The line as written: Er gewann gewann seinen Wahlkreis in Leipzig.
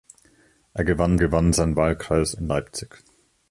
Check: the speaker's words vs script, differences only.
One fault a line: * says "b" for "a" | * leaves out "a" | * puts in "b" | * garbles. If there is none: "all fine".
all fine